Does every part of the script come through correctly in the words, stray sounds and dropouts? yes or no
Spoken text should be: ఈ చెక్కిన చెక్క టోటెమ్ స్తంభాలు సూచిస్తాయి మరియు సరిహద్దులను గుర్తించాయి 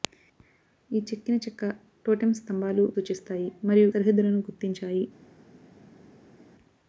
yes